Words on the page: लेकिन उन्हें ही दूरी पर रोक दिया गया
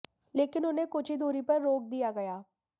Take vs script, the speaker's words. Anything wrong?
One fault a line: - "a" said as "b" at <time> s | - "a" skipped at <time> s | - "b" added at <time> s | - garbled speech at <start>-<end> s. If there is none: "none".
- "कुछ" added at 0.9 s